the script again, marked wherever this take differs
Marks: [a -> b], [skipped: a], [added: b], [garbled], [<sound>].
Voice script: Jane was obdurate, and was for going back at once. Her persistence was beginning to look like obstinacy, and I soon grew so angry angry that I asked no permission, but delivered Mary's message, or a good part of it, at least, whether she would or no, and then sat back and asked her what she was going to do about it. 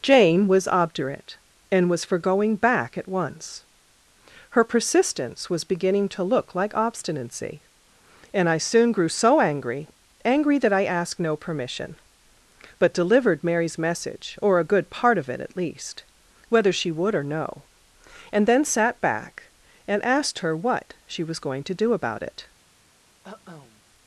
Jane was obdurate, and was for going back at once. Her persistence was beginning to look like obstinacy, and I soon grew so angry angry that I asked no permission, but delivered Mary's message, or a good part of it, at least, whether she would or no, and then sat back and asked her what she was going to do about it. [cough]